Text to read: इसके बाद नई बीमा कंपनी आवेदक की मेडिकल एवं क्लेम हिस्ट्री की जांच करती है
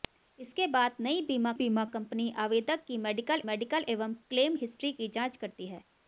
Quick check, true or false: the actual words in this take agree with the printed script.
false